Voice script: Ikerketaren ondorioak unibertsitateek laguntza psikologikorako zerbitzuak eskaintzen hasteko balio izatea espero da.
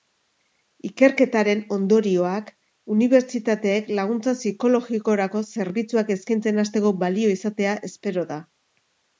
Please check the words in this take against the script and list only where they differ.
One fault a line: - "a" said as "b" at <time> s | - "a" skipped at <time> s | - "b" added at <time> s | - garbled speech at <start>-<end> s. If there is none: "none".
none